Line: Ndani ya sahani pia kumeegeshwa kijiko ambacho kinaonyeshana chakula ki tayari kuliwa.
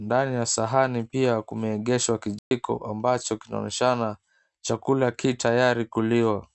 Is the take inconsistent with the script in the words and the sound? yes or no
yes